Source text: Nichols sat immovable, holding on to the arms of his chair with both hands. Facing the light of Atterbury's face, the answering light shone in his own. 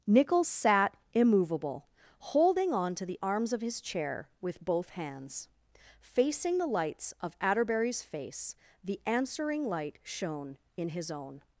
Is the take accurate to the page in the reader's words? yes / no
no